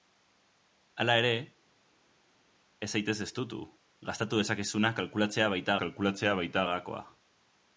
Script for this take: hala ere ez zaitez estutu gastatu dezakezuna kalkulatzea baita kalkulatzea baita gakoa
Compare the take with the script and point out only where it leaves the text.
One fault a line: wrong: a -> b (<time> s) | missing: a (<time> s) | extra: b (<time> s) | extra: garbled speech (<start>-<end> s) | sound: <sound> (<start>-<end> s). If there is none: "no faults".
no faults